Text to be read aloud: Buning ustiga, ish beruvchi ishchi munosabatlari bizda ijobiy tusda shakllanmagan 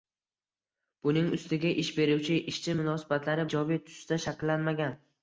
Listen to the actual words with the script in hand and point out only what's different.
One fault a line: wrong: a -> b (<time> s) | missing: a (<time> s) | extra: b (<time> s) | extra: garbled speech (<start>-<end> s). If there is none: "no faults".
missing: bizda (3.5 s)